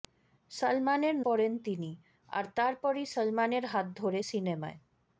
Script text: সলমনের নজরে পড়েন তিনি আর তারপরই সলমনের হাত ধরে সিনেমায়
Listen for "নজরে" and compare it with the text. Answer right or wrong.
wrong